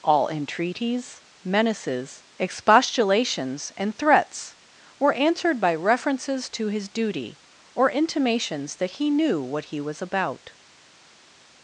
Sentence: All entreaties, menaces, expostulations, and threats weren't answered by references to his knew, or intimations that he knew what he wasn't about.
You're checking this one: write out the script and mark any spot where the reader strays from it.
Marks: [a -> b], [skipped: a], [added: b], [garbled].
All entreaties, menaces, expostulations, and threats [weren't -> were] answered by references to his [knew, -> duty] or intimations that he knew what he [wasn't -> was] about.